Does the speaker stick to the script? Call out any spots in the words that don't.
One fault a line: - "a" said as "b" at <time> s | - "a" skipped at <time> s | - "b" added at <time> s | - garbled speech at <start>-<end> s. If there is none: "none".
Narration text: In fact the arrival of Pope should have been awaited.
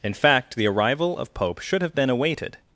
none